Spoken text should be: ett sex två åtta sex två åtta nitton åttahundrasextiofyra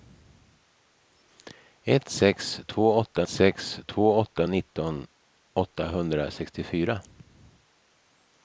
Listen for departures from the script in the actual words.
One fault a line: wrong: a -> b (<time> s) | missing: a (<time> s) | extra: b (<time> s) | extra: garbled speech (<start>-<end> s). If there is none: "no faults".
no faults